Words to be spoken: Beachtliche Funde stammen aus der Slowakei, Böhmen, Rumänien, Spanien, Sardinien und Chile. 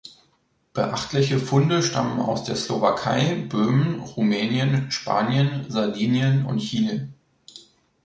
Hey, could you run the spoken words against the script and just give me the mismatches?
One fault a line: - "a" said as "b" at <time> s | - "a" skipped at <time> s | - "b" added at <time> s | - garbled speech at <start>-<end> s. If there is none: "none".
none